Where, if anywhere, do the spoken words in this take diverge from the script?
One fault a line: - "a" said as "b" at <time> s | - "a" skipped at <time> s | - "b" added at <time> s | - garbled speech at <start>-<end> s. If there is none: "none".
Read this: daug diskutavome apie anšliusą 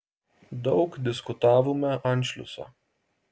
- "apie" skipped at 1.9 s